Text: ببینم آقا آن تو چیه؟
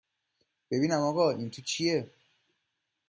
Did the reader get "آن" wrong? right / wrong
wrong